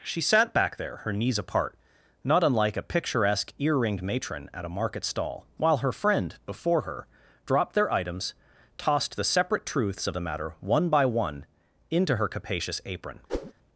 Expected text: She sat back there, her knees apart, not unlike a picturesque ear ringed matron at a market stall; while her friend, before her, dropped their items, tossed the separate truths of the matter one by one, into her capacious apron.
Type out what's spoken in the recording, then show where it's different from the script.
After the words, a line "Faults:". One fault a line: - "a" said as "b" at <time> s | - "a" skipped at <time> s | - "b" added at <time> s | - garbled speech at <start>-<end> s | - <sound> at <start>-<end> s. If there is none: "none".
She sat back there, her knees apart, not unlike a picturesque ear ringed matron at a market stall; while her friend, before her, dropped their items, tossed the separate truths of the matter one by one, into her capacious apron.
Faults:
- whoosh at 13.3-13.5 s